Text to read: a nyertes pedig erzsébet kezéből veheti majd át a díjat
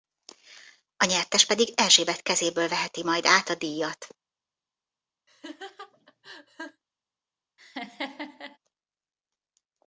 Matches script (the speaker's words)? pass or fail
pass